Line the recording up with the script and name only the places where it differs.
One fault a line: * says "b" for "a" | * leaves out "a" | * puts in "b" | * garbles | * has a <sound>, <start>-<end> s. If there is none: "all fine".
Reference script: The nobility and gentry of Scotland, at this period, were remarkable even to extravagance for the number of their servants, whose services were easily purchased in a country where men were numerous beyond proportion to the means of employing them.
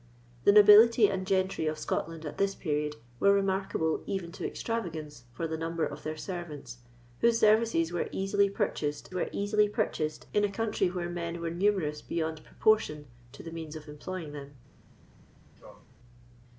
* puts in "were easily purchased"
* has a sneeze, 15.6-15.9 s